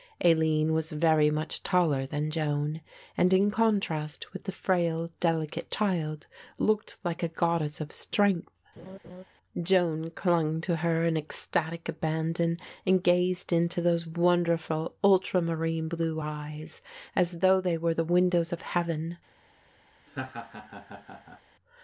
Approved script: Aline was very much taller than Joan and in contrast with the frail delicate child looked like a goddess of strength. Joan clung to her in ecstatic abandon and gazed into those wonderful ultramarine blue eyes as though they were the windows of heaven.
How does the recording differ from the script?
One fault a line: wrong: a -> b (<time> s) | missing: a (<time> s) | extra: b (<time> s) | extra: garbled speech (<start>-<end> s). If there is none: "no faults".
no faults